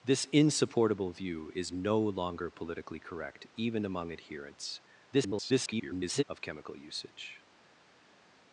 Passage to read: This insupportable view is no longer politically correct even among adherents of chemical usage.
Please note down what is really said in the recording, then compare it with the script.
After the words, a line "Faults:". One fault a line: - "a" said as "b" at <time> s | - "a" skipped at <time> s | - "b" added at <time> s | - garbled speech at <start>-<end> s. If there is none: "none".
This insupportable view is no longer politically correct even among adherents [garbled] of chemical usage.
Faults:
- garbled speech at 5.1-6.2 s